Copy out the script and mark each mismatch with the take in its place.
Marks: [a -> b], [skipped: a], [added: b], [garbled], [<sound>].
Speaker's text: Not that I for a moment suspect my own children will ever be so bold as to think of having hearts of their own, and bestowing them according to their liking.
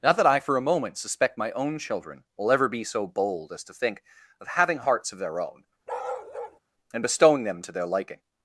Not that I for a moment suspect my own children will ever be so bold as to think of having hearts of their own, [bark] and bestowing them [skipped: according] to their liking.